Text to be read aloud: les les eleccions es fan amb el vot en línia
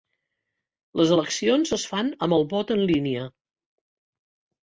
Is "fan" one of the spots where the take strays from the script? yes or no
no